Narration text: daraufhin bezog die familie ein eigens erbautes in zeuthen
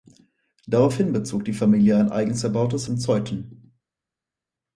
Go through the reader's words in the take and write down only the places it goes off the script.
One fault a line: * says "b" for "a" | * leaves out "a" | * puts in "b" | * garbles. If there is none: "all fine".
all fine